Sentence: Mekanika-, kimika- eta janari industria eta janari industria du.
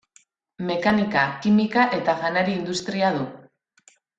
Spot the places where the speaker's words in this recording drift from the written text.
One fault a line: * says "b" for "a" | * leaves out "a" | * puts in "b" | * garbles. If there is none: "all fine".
* leaves out "eta janari industria"